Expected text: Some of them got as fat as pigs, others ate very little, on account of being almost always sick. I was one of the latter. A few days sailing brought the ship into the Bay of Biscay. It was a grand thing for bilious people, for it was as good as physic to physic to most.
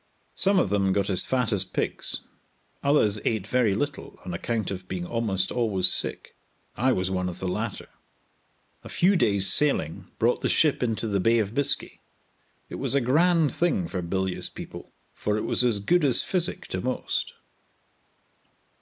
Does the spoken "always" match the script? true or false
true